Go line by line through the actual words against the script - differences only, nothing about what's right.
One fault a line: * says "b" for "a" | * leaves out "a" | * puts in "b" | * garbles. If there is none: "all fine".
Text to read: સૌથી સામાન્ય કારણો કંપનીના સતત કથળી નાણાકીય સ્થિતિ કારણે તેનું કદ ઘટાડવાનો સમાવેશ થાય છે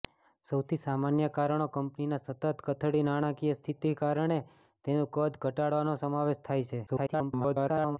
* garbles